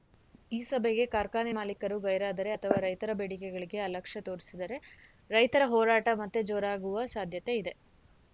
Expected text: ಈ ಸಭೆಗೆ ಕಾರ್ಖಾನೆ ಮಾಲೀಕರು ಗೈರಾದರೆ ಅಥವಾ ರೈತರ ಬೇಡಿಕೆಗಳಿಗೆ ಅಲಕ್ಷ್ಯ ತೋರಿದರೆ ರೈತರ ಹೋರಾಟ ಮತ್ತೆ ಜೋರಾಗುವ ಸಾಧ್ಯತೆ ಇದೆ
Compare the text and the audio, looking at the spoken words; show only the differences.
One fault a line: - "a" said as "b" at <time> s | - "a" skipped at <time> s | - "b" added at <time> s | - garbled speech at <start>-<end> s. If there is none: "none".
none